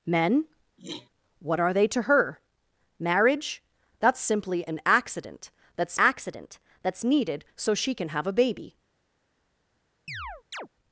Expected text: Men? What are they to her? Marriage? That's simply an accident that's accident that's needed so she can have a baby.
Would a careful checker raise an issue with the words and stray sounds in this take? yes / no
yes